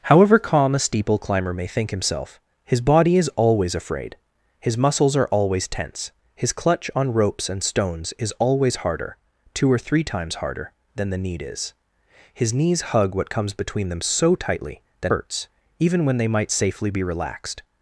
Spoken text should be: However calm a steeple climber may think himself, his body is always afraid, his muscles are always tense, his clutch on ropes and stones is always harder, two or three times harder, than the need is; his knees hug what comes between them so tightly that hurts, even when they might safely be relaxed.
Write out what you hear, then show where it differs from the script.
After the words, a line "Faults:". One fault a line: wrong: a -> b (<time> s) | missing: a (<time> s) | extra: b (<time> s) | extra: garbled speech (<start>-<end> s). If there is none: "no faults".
However calm a steeple climber may think himself, his body is always afraid, his muscles are always tense, his clutch on ropes and stones is always harder, two or three times harder, than the need is; his knees hug what comes between them so tightly that hurts, even when they might safely be relaxed.
Faults:
no faults